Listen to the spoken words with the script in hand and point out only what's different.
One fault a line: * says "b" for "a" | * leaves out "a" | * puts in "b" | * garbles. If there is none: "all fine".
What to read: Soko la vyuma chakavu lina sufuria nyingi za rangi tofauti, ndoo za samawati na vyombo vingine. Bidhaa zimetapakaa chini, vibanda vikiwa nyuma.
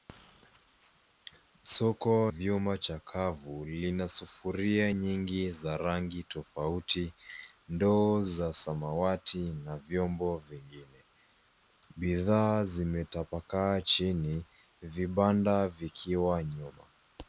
* leaves out "la"